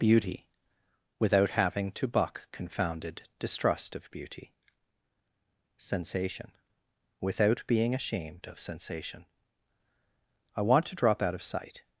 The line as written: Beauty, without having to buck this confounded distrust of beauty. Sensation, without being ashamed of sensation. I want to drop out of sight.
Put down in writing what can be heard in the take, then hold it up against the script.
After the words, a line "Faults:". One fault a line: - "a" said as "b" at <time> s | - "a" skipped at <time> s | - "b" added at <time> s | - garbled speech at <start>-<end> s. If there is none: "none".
Beauty, without having to buck confounded distrust of beauty. Sensation, without being ashamed of sensation. I want to drop out of sight.
Faults:
- "this" skipped at 2.5 s